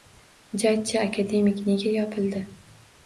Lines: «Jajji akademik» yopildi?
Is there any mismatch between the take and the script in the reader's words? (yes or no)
yes